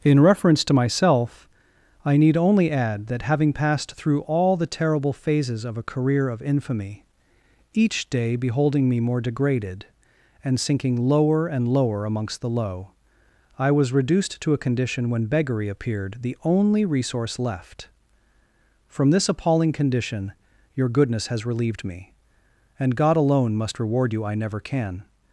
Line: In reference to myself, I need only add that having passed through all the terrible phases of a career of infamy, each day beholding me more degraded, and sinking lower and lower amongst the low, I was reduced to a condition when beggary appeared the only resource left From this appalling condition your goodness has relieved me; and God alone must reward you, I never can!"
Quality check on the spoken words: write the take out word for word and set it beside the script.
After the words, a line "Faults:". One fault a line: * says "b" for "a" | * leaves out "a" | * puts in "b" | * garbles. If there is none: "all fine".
In reference to myself, I need only add that having passed through all the terrible phases of a career of infamy, each day beholding me more degraded, and sinking lower and lower amongst the low, I was reduced to a condition when beggary appeared the only resource left From this appalling condition your goodness has relieved me; and God alone must reward you, I never can!"
Faults:
all fine